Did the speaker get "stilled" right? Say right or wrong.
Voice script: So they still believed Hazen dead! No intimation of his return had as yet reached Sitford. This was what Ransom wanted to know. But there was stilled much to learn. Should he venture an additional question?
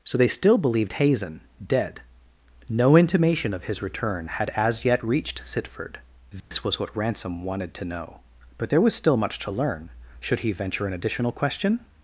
wrong